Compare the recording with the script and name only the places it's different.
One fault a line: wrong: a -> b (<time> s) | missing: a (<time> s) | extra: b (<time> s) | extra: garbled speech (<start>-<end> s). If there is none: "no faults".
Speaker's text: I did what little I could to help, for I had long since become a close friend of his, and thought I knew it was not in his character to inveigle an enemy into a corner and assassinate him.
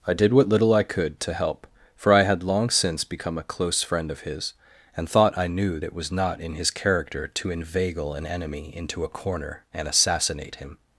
no faults